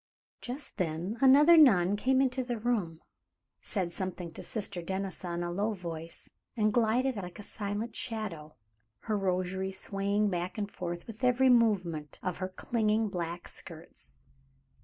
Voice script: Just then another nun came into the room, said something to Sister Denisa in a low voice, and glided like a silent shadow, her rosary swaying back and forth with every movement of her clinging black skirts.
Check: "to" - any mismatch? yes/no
no